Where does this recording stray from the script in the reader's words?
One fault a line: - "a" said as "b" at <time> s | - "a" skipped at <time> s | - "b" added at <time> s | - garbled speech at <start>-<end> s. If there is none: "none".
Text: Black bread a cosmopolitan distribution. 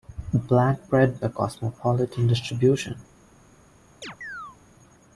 none